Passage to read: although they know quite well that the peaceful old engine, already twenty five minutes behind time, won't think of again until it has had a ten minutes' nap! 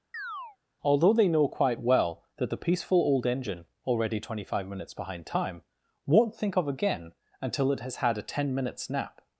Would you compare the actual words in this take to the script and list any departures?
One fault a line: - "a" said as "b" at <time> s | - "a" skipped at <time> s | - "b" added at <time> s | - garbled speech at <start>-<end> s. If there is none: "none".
none